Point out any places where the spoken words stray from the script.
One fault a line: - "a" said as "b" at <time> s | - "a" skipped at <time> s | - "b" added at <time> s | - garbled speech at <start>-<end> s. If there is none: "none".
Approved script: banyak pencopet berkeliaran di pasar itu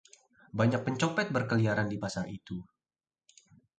none